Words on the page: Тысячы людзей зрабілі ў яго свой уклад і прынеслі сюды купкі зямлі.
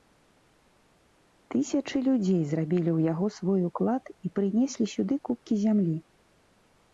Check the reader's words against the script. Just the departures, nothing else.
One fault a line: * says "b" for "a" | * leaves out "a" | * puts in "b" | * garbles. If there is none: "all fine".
all fine